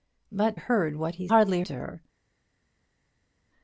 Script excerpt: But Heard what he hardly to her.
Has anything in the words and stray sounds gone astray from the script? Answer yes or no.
no